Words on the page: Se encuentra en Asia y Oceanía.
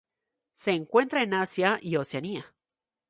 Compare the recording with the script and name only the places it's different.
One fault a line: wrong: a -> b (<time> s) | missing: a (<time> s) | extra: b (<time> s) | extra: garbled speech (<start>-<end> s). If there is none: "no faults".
no faults